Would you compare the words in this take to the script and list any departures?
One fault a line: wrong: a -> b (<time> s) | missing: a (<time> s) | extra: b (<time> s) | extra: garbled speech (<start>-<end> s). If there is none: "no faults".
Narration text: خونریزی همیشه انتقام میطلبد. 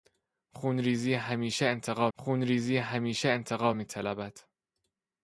extra: خونریزی همیشه انتقام (2.1 s)